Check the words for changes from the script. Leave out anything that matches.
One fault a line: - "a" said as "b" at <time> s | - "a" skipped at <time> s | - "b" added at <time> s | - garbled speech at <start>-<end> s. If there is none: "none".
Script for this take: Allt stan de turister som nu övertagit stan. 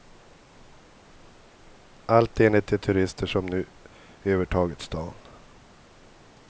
- "stan" said as "enligt" at 2.4 s